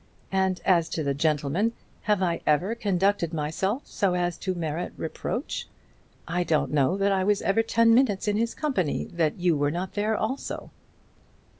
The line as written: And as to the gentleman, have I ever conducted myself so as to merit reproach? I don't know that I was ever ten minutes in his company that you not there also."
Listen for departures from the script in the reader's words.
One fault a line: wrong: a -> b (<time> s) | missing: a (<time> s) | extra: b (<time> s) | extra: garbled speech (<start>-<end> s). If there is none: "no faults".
extra: were (9.6 s)